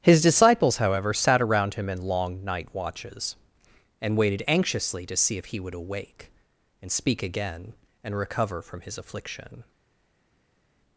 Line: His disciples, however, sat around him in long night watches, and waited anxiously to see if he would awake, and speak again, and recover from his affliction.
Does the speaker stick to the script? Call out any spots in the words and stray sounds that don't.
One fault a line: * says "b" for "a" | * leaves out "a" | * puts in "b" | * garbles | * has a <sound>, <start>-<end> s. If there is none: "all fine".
all fine